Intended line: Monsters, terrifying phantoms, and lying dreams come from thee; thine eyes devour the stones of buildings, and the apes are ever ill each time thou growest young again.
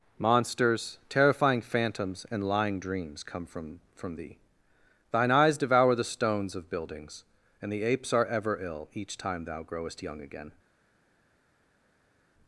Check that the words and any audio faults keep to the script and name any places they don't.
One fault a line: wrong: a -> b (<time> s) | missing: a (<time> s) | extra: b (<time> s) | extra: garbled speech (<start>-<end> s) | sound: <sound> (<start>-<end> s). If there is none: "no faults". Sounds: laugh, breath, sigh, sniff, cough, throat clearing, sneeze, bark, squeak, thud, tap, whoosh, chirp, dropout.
extra: from (3.9 s)